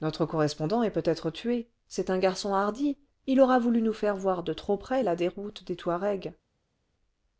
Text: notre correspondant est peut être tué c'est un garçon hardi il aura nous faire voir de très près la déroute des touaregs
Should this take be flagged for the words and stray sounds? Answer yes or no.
yes